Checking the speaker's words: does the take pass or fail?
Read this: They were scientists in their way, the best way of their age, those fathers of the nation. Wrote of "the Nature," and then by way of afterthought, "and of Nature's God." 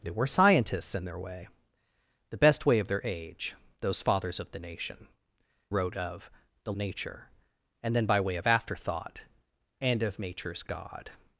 pass